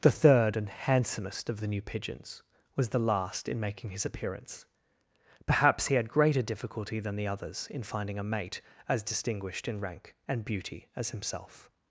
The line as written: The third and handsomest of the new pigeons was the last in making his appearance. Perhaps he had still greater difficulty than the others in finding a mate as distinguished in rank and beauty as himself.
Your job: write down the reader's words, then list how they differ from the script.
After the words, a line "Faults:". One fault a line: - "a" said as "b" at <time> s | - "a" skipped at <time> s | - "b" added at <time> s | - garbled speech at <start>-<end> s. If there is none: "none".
The third and handsomest of the new pigeons was the last in making his appearance. Perhaps he had greater difficulty than the others in finding a mate as distinguished in rank and beauty as himself.
Faults:
- "still" skipped at 6.1 s